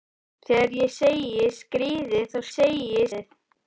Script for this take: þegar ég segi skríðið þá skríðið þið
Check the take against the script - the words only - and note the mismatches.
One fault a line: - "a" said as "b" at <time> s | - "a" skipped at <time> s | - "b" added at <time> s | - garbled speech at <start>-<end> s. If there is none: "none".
- "skríðið" said as "segi" at 2.5 s